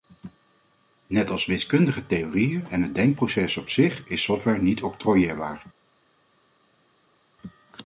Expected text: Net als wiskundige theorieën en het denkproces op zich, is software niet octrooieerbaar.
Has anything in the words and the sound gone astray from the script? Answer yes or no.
no